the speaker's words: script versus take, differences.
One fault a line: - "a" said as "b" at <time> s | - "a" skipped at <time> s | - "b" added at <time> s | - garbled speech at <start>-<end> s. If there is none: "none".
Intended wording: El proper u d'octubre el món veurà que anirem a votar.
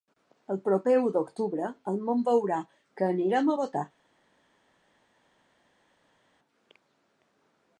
none